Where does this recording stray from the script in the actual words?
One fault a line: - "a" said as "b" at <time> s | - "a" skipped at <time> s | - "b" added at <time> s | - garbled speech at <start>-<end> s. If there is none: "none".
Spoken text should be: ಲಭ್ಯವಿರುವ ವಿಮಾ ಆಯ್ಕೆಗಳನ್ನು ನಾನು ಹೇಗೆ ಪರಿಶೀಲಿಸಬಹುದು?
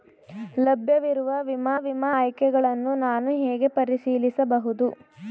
- "ವಿಮಾ" added at 1.8 s